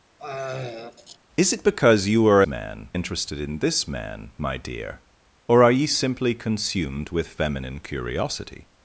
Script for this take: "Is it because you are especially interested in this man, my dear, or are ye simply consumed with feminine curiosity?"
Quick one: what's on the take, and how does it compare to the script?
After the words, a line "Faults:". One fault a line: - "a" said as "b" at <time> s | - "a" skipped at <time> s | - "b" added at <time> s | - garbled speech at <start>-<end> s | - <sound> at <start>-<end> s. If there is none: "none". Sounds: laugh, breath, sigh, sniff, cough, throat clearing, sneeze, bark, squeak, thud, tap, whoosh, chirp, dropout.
"Is it because you are man interested in this man, my dear, or are ye simply consumed with feminine curiosity?"
Faults:
- throat clearing at 0.2-1.2 s
- "especially" said as "man" at 2.5 s